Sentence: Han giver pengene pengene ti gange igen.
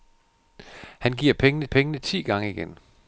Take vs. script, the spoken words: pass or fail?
pass